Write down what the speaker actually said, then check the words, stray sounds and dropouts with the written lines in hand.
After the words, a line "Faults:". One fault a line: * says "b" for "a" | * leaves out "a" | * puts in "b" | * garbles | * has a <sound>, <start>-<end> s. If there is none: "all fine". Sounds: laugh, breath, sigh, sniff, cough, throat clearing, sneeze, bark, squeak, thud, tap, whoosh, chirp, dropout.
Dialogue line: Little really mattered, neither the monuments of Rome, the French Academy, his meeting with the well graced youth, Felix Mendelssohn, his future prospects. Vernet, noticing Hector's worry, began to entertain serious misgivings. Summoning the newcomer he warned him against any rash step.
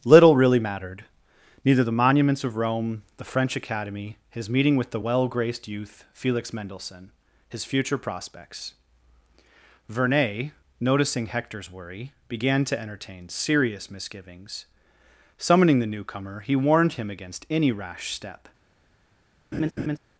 Little really mattered, neither the monuments of Rome, the French Academy, his meeting with the well graced youth, Felix Mendelssohn, his future prospects. Vernet, noticing Hector's worry, began to entertain serious misgivings. Summoning the newcomer he warned him against any rash step.
Faults:
* has a laugh, 19.5-20.0 s